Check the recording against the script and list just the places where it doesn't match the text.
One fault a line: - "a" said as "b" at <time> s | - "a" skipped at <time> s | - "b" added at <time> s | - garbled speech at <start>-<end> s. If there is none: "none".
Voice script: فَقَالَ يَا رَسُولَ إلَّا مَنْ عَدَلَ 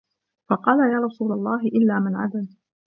- "اللَّهِ" added at 1.3 s